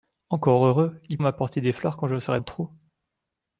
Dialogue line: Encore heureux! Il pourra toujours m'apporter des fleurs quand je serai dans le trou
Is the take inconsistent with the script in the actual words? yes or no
yes